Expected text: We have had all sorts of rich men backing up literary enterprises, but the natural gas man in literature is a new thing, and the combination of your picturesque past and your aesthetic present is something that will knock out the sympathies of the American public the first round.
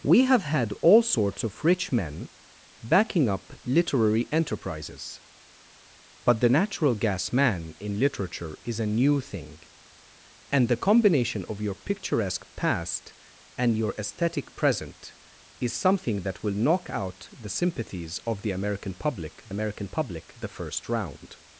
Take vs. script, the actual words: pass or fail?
fail